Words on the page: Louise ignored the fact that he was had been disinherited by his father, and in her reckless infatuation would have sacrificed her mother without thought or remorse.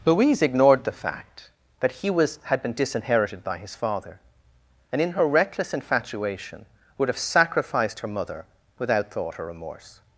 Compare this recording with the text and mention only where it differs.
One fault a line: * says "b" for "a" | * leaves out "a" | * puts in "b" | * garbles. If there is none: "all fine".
all fine